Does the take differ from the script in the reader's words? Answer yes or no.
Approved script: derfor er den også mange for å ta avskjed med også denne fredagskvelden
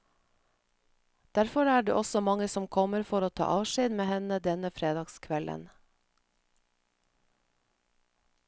yes